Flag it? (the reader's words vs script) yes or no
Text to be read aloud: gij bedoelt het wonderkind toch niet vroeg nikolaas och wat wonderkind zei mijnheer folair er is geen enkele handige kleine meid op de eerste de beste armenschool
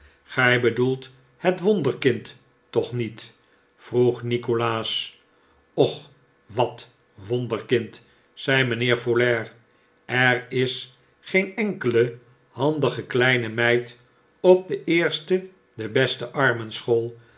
no